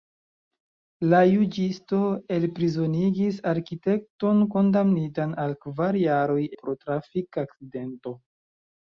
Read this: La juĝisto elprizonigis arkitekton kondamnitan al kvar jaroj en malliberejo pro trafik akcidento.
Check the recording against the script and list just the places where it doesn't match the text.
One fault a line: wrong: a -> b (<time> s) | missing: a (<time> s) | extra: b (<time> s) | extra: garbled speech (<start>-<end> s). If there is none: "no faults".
missing: en malliberejo (6.4 s)